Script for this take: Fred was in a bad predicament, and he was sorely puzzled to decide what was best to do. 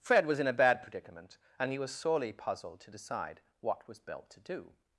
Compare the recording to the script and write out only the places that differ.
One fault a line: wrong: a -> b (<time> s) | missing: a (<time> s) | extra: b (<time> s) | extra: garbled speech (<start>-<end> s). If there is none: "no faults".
wrong: best -> belt (4.0 s)